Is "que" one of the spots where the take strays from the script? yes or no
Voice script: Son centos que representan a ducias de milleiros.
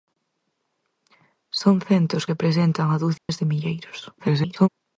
yes